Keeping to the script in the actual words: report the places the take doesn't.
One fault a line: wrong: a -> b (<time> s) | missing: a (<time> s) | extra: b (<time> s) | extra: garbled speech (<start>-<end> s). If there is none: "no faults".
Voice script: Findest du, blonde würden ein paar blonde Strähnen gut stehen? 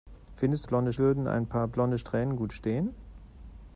no faults